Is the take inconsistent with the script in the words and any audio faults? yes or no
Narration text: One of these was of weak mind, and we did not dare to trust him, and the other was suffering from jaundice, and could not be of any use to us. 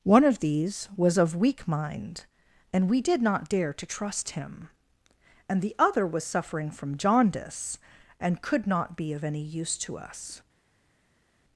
no